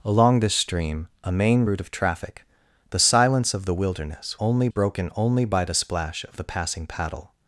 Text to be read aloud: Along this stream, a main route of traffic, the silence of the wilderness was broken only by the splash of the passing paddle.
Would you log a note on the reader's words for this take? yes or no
yes